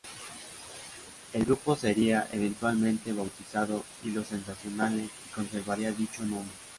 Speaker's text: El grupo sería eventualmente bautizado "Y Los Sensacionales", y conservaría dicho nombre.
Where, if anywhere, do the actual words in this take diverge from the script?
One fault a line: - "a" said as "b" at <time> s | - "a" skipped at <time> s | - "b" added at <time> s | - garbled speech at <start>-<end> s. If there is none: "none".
none